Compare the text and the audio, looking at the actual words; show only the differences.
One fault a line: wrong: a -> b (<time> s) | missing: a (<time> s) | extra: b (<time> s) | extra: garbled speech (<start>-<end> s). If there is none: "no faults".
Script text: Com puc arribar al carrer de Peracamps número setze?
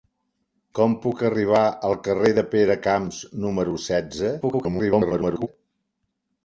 extra: garbled speech (4.4-5.5 s)